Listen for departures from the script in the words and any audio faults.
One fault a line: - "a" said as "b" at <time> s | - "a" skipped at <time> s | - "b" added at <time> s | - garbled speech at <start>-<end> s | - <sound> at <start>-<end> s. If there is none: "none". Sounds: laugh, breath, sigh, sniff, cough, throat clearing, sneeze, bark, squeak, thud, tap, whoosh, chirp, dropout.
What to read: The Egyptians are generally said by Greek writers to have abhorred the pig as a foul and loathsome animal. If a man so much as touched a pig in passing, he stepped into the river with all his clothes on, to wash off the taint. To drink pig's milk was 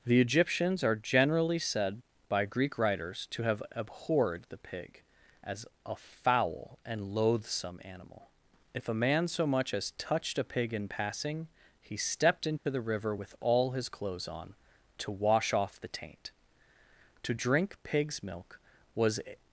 - dropout at 12.6-12.7 s